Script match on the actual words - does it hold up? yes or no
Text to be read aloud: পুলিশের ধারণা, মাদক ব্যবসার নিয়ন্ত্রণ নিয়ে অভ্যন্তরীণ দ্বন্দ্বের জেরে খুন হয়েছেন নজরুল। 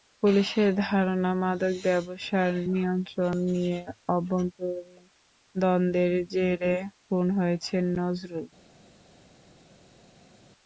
yes